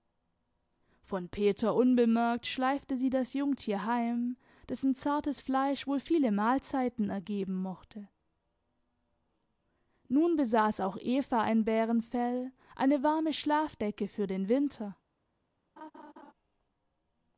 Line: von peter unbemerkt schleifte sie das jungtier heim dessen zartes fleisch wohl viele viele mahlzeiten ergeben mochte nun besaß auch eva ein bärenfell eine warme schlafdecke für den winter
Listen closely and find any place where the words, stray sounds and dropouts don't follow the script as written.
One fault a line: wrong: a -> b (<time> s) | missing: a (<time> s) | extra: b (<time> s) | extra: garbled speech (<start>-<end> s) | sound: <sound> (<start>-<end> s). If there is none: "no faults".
missing: viele (6.3 s)
sound: laugh (15.8-16.3 s)